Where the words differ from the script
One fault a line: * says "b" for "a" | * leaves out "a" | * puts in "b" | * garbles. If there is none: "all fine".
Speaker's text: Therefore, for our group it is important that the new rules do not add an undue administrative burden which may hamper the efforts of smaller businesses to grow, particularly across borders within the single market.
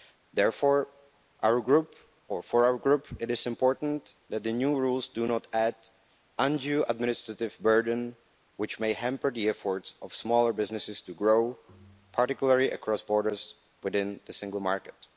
all fine